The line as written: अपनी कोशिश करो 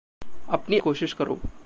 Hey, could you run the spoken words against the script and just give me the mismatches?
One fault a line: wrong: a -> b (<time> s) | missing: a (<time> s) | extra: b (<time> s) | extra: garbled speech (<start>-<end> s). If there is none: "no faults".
no faults